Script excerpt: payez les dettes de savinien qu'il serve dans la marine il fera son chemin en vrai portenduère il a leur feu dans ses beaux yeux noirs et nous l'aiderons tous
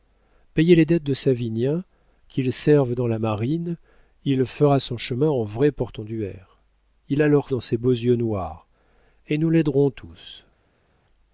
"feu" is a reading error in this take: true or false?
true